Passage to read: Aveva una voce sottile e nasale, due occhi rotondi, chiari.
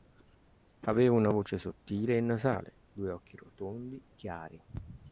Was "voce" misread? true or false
false